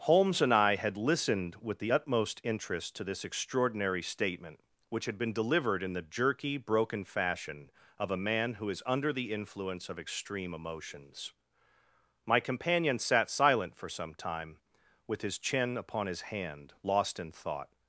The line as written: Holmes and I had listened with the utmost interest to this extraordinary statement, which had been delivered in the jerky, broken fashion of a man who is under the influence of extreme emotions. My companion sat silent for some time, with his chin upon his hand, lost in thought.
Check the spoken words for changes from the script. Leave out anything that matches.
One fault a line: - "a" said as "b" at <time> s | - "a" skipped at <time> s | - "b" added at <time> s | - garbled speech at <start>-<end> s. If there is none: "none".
none